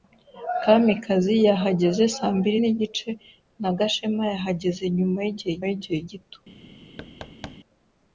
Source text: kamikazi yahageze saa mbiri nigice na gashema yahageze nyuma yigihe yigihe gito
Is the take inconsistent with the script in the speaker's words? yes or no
no